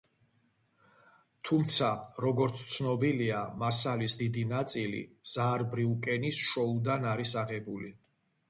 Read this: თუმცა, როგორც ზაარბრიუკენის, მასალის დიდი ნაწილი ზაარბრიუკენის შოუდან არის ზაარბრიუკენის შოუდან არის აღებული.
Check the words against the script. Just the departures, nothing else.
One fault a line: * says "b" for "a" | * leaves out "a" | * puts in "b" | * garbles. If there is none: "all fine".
* says "ცნობილია" for "ზაარბრიუკენის"
* leaves out "ზაარბრიუკენის შოუდან არის"